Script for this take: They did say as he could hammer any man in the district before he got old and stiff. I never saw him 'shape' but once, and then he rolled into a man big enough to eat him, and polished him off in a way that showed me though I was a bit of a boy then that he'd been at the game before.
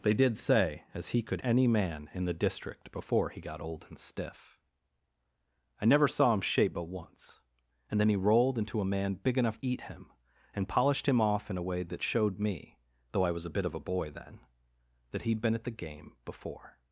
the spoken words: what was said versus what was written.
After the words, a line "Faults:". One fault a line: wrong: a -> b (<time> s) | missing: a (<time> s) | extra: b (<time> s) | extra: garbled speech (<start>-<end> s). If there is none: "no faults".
They did say as he could any man in the district before he got old and stiff. I never saw him 'shape' but once, and then he rolled into a man big enough eat him, and polished him off in a way that showed me though I was a bit of a boy then that he'd been at the game before.
Faults:
missing: hammer (1.4 s)
missing: to (9.6 s)